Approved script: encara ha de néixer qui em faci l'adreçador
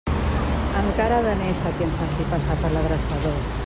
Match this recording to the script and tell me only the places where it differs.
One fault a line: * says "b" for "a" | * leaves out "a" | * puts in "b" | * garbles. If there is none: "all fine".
* puts in "passar per"